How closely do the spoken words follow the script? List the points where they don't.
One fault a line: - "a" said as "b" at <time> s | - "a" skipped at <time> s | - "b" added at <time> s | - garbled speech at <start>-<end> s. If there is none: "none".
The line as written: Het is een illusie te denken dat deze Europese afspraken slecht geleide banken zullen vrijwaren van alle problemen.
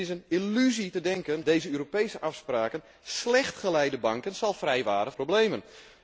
- "dat" skipped at 1.4 s
- "van alle" skipped at 5.1 s